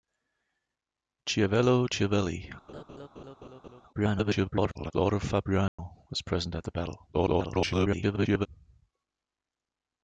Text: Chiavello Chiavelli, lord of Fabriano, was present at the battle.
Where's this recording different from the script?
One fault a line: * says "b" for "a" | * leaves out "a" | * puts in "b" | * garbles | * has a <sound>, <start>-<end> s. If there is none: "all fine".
* has a laugh, 2.7-3.8 s
* garbles
* has a dropout, 5.7-5.8 s
* garbles